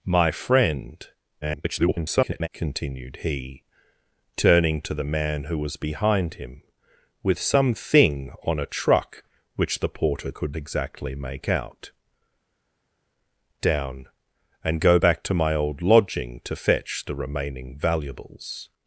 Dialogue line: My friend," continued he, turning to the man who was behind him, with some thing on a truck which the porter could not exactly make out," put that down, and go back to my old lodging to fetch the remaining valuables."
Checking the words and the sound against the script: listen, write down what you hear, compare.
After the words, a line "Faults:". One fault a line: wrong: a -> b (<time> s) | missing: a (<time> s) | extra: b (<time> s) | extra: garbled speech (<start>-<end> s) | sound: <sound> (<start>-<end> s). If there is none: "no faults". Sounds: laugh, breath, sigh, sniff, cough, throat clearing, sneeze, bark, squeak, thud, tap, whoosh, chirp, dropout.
My friend," [garbled] continued he, turning to the man who was behind him, with some thing on a truck which the porter could exactly make out," down, and go back to my old lodging to fetch the remaining valuables."
Faults:
extra: garbled speech (1.4-2.5 s)
missing: not (10.6 s)
missing: put that (11.9 s)